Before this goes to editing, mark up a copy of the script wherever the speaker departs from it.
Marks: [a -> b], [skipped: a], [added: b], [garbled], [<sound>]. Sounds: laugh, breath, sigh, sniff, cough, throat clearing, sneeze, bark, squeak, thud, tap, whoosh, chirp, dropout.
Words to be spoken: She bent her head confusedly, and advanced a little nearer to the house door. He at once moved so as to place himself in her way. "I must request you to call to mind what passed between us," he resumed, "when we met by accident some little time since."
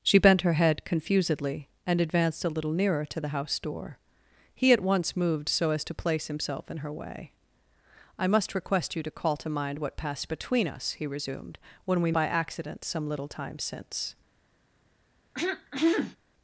She bent her head confusedly, and advanced a little nearer to the house door. He at once moved so as to place himself in her way. "I must request you to call to mind what passed between us," he resumed, "when we [skipped: met] by accident some little time since." [throat clearing]